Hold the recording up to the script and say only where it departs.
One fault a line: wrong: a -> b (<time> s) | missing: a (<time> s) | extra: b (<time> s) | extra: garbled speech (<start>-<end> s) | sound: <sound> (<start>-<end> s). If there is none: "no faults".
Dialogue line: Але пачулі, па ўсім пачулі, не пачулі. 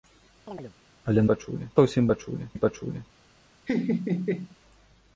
sound: chirp (0.5-0.7 s)
sound: laugh (3.7-4.6 s)